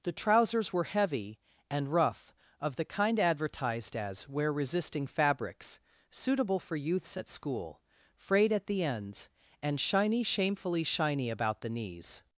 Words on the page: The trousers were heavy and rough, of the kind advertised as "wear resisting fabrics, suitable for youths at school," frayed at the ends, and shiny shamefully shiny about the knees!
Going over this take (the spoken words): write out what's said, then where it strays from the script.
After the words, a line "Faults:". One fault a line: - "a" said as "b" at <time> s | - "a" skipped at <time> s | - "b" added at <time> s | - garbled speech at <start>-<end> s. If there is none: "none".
The trousers were heavy and rough, of the kind advertised as "wear resisting fabrics, suitable for youths at school," frayed at the ends, and shiny shamefully shiny about the knees!
Faults:
none